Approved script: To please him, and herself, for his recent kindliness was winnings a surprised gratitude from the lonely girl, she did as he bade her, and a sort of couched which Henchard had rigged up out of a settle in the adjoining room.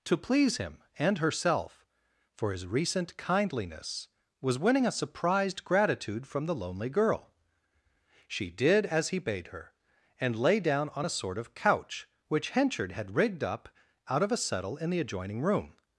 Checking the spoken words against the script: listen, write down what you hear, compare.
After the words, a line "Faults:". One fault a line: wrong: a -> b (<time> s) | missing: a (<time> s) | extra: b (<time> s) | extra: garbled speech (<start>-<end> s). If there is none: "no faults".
To please him, and herself, for his recent kindliness was winning a surprised gratitude from the lonely girl, she did as he bade her, and lay down on a sort of couch which Henchard had rigged up out of a settle in the adjoining room.
Faults:
wrong: winnings -> winning (4.6 s)
extra: lay down on (10.3 s)
wrong: couched -> couch (11.5 s)